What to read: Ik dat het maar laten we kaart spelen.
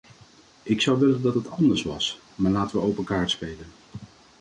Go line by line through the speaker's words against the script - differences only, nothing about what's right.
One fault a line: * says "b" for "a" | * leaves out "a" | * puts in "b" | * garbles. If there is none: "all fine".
* puts in "zou willen"
* puts in "anders was"
* puts in "open"